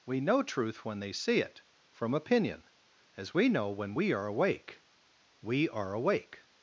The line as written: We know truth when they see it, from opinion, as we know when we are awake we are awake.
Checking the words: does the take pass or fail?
pass